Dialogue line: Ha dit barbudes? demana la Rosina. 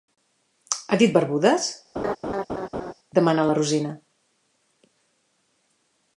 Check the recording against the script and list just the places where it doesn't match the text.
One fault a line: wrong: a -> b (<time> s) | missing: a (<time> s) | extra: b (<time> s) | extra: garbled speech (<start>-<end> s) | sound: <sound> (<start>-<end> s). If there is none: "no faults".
sound: laugh (2.0-2.9 s)